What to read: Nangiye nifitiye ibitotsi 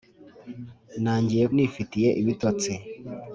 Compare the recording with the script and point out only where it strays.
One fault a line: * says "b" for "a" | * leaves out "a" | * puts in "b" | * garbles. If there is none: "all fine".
all fine